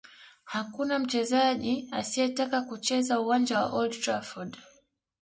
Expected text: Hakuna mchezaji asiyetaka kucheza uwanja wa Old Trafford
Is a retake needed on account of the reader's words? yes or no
no